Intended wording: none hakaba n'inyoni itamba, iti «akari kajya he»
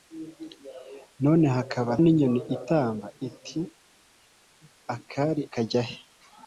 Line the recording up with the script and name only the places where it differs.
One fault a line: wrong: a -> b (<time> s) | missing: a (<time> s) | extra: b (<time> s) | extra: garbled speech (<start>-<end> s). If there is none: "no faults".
no faults